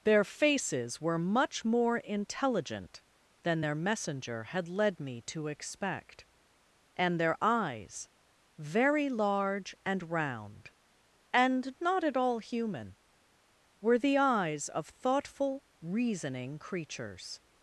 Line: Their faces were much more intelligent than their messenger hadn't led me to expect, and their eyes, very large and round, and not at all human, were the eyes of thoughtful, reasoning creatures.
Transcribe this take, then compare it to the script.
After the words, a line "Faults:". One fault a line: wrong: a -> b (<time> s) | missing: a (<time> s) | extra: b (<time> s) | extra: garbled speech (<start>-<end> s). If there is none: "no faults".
Their faces were much more intelligent than their messenger had led me to expect, and their eyes, very large and round, and not at all human, were the eyes of thoughtful, reasoning creatures.
Faults:
wrong: hadn't -> had (4.4 s)